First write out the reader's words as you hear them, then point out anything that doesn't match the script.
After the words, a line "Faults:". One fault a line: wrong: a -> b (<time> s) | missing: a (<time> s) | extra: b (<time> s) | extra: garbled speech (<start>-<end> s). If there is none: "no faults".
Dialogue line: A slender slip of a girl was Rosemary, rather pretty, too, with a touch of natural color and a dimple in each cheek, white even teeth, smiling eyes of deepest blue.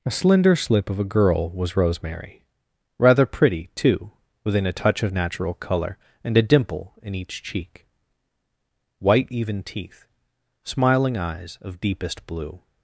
A slender slip of a girl was Rosemary, rather pretty, too, within a touch of natural color and a dimple in each cheek, white even teeth, smiling eyes of deepest blue.
Faults:
wrong: with -> within (4.5 s)